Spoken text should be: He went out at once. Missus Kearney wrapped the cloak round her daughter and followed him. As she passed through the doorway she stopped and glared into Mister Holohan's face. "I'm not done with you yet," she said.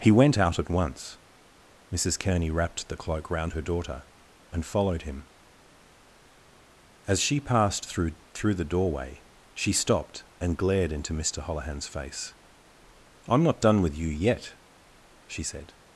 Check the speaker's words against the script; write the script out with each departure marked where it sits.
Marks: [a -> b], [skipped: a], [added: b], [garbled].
He went out at once. Missus Kearney wrapped the cloak round her daughter and followed him. As she passed through [added: through] the doorway she stopped and glared into Mister Holohan's face. "I'm not done with you yet," she said.